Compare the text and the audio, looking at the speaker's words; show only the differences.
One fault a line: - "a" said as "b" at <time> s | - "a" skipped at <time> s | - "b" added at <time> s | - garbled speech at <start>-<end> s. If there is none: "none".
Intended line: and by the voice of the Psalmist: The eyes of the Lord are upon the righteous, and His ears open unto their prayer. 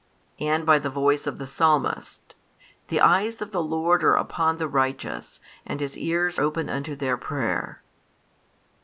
none